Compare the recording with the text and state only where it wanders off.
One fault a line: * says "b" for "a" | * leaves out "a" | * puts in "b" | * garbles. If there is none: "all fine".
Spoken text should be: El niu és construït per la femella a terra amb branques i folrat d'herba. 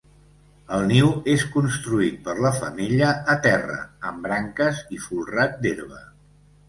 all fine